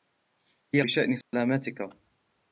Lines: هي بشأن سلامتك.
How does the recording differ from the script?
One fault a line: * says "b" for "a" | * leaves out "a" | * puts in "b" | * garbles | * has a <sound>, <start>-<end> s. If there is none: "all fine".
* has a dropout, 1.2-1.3 s